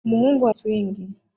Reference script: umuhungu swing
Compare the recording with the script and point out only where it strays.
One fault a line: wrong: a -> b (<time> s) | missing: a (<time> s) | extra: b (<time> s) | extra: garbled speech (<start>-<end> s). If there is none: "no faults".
no faults